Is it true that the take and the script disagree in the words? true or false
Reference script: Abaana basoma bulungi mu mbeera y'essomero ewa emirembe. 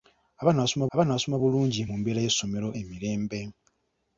true